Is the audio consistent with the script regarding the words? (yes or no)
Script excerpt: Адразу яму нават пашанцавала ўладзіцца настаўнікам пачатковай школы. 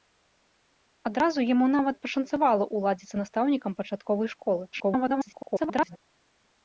no